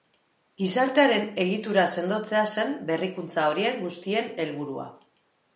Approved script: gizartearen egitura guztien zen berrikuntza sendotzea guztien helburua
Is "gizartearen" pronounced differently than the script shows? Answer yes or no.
no